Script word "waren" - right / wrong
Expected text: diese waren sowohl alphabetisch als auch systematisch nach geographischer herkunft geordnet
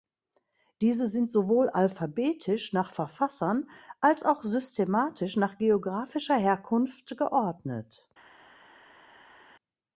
wrong